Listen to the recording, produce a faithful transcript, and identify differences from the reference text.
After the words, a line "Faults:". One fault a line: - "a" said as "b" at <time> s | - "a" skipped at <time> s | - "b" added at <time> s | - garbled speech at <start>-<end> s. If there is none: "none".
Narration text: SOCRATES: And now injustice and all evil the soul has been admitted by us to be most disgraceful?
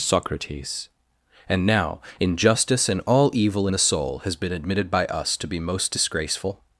SOCRATES: And now injustice and all evil the soul has been admitted by us to be most disgraceful?
Faults:
none